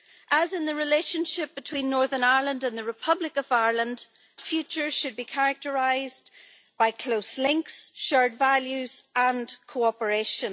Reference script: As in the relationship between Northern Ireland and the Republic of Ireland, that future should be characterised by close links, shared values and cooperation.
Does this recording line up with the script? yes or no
no